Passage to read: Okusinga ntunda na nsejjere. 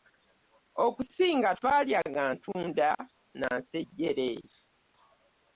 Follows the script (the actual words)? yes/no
no